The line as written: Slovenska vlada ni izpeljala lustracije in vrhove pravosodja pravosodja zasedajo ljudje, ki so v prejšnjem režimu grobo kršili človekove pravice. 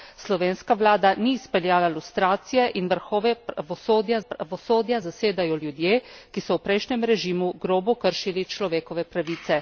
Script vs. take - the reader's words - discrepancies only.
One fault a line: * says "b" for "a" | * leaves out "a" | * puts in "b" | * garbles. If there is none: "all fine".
all fine